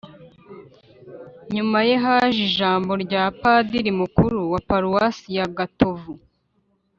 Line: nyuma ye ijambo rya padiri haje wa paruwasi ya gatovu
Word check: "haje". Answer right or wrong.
wrong